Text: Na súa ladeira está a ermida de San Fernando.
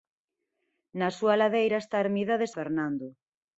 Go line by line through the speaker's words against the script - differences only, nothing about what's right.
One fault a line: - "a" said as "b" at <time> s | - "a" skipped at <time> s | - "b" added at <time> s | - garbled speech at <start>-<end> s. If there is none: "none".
- "San" skipped at 2.5 s